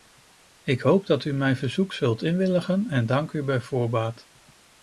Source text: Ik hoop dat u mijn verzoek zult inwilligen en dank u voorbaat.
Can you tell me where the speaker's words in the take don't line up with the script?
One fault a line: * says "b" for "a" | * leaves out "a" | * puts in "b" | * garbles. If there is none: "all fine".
* puts in "bij"